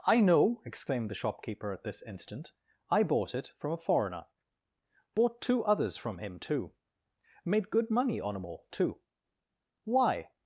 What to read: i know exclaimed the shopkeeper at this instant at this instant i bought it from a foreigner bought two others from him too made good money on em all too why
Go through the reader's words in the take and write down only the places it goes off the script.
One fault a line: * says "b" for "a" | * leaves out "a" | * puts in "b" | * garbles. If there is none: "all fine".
* leaves out "at this instant"